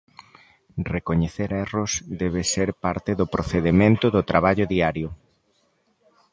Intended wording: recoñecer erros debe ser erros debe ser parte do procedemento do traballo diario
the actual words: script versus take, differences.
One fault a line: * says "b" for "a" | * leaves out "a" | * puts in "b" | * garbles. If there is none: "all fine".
* leaves out "erros debe ser"